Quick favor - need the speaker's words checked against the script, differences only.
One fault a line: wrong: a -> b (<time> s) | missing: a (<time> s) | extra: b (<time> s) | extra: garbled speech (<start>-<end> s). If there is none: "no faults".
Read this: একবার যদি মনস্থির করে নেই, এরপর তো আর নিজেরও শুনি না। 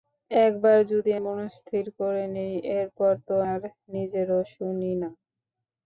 no faults